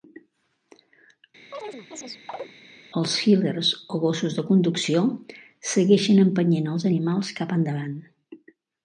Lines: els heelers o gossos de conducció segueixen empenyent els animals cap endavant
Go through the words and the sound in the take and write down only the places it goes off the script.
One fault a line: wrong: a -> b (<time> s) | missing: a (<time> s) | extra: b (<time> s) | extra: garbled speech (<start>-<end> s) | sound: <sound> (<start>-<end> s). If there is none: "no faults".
sound: chirp (1.5-2.5 s)